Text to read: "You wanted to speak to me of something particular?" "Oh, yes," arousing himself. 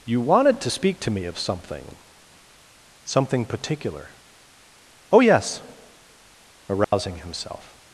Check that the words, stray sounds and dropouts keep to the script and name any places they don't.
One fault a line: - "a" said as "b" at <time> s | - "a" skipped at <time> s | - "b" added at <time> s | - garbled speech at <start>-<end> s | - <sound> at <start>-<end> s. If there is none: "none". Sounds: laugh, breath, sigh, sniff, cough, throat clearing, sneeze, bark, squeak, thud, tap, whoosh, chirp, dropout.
- "something" added at 3.0 s
- dropout at 6.8-6.9 s